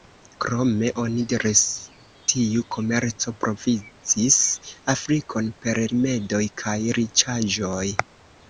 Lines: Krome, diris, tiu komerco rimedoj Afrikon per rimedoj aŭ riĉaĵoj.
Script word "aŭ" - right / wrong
wrong